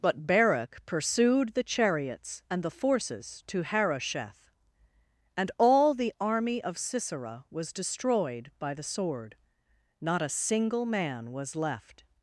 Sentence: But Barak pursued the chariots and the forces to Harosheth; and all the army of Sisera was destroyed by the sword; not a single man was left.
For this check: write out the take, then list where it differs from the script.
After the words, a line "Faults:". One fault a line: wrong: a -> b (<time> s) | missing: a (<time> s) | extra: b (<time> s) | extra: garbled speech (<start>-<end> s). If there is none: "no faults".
But Barak pursued the chariots and the forces to Harosheth; and all the army of Sisera was destroyed by the sword; not a single man was left.
Faults:
no faults